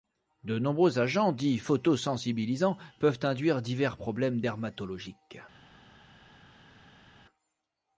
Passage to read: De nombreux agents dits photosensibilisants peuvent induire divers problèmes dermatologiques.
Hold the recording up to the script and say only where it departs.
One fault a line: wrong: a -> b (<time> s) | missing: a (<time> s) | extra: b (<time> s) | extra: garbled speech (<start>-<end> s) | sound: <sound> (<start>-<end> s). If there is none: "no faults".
no faults